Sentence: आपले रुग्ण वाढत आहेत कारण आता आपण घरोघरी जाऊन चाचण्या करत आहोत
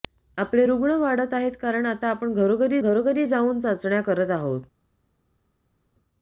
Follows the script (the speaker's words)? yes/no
no